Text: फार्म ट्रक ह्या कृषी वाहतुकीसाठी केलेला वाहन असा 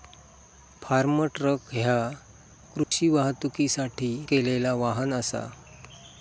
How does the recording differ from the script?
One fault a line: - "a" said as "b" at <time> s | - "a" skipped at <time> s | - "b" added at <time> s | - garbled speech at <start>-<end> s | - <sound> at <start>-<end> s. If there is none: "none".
- dropout at 2.8-2.9 s